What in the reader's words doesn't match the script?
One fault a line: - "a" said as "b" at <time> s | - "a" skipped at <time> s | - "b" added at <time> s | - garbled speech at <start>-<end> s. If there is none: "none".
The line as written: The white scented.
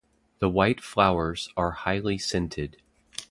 - "flowers are highly" added at 0.8 s